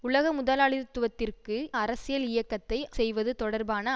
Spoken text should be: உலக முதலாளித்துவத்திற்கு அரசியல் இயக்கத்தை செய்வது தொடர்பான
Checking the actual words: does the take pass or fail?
pass